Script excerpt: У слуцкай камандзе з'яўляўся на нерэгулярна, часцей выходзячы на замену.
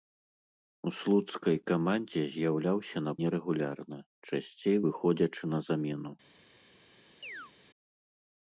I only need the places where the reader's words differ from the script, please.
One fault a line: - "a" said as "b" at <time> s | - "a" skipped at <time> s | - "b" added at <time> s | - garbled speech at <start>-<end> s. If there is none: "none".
none